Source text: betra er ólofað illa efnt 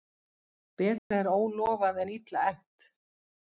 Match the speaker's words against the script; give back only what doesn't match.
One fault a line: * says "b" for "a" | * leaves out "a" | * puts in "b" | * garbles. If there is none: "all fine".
* puts in "en"